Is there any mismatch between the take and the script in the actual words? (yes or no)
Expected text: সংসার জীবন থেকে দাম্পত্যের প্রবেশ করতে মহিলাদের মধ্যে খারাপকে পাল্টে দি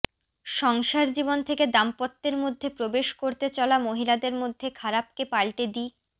yes